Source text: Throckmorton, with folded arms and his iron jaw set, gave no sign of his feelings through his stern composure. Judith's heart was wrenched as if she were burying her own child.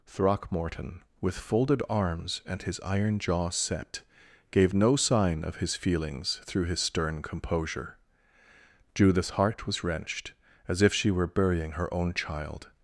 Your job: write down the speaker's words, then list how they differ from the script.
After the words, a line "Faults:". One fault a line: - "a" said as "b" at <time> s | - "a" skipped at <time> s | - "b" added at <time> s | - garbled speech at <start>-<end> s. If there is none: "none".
Throckmorton, with folded arms and his iron jaw set, gave no sign of his feelings through his stern composure. Judith's heart was wrenched as if she were burying her own child.
Faults:
none